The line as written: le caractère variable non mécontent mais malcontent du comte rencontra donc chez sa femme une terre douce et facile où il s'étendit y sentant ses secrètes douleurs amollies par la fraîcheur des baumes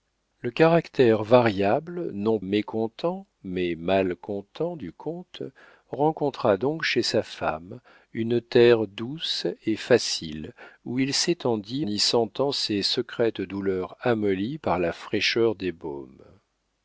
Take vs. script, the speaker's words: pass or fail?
pass